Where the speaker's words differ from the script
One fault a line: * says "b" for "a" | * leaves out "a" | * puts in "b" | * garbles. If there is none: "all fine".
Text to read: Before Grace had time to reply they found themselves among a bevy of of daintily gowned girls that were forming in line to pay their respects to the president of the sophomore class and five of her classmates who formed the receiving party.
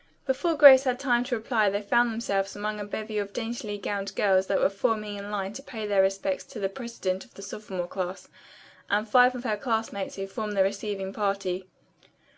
* leaves out "of"